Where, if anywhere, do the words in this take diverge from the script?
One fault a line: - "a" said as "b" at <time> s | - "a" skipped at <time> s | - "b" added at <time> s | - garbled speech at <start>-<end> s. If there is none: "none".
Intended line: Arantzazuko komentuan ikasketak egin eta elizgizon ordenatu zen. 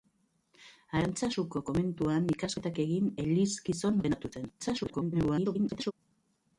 - "eta" skipped at 3.1 s
- garbled speech at 4.6-5.9 s